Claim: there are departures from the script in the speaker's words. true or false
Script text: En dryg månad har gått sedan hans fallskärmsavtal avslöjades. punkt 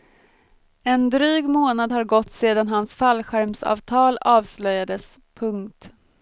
false